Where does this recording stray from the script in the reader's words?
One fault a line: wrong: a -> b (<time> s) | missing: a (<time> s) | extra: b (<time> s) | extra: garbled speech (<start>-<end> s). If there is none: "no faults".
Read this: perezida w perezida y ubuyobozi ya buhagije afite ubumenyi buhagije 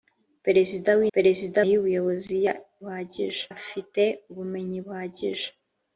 no faults